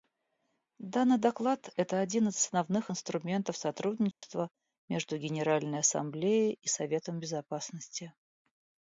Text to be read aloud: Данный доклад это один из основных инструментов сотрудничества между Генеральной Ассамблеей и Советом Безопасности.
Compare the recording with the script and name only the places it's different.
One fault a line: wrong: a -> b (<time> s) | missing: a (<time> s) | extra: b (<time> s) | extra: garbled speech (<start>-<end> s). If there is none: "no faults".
no faults